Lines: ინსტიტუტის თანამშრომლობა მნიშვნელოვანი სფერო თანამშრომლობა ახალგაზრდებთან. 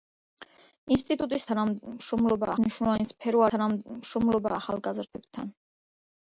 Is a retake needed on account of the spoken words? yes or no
no